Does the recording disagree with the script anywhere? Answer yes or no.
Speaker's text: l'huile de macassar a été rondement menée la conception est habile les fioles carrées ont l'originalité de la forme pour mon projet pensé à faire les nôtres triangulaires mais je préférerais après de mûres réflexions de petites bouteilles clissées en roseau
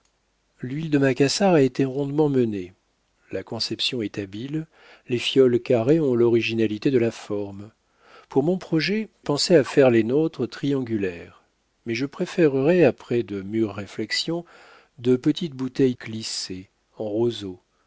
no